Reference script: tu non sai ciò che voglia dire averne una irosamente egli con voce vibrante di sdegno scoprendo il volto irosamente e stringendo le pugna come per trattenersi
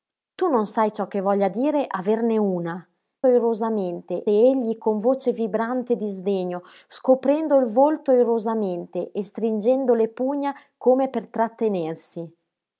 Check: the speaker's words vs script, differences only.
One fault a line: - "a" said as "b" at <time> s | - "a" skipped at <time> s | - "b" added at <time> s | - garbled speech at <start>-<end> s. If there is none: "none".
none